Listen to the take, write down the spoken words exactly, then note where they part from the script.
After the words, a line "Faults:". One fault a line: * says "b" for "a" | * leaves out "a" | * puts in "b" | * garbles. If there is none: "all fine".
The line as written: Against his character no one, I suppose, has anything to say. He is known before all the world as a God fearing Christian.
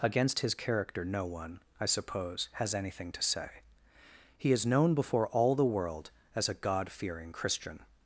Against his character no one, I suppose, has anything to say. He is known before all the world as a God fearing Christian.
Faults:
all fine